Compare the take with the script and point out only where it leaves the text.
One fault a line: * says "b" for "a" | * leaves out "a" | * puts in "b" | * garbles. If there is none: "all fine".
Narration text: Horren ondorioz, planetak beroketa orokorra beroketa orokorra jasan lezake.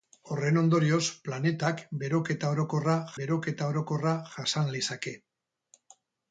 all fine